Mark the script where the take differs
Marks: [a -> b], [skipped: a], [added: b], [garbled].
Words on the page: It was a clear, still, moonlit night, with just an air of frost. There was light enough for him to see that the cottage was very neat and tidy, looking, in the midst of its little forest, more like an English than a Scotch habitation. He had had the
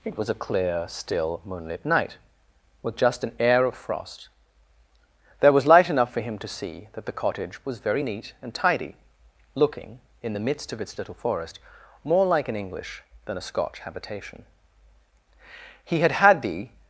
It was a clear, still, moonlit night, with just an air of frost. There was light enough for him to see that the cottage was very neat and tidy, looking, in the midst of its little forest, more like an English than a Scotch habitation. He had had the